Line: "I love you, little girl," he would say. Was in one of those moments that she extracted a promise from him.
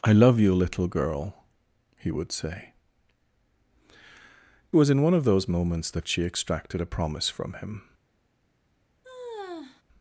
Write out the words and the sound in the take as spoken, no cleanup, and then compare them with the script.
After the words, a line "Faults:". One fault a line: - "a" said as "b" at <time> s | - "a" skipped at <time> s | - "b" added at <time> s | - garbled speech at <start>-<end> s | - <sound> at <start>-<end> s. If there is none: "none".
"I love you, little girl," he would say. Was in one of those moments that she extracted a promise from him.
Faults:
- sigh at 9.0-9.8 s